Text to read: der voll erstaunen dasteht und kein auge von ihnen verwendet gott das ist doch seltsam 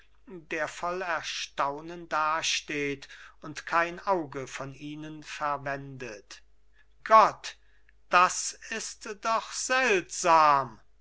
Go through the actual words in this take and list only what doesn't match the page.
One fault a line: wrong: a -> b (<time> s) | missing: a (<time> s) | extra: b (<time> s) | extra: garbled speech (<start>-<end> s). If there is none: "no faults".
no faults